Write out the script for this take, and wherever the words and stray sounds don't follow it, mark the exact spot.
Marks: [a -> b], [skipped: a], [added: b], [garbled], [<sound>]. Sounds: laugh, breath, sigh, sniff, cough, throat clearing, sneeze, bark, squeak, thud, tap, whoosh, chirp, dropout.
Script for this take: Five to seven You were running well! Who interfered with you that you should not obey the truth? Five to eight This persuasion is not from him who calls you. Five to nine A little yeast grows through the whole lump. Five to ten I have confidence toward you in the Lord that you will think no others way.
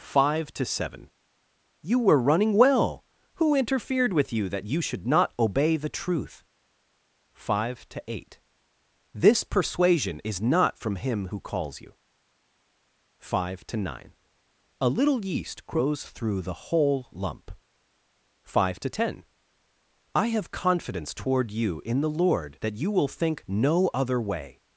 Five to seven You were running well! Who interfered with you that you should not obey the truth? Five to eight This persuasion is not from him who calls you. Five to nine A little yeast grows through the whole lump. Five to ten I have confidence toward you in the Lord that you will think no [others -> other] way.